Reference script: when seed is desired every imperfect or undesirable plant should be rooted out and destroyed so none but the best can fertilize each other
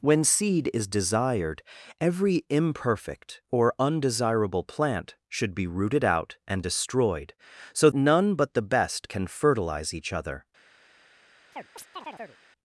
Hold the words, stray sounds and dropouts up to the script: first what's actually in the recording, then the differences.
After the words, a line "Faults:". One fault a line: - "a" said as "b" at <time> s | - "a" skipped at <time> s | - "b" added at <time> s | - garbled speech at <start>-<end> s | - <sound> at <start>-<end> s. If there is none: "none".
when seed is desired every imperfect or undesirable plant should be rooted out and destroyed so none but the best can fertilize each other
Faults:
- chirp at 11.5-12.4 s